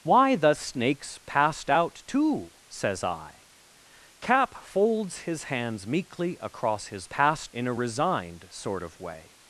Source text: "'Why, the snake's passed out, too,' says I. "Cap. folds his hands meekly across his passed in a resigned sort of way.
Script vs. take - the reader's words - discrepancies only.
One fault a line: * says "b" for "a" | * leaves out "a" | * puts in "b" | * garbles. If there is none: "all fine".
all fine